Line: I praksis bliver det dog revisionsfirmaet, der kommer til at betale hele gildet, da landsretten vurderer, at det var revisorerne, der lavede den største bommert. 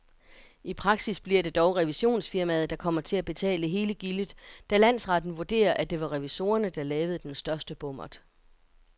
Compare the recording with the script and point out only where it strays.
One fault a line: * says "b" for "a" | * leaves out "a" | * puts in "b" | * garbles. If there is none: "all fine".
all fine